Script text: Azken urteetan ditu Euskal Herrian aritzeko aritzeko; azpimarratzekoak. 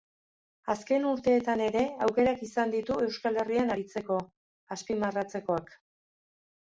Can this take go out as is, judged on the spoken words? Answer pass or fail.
fail